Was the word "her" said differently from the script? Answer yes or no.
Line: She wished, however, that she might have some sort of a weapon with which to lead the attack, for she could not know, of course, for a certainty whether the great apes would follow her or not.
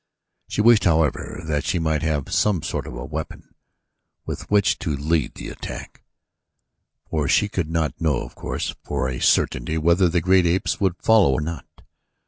yes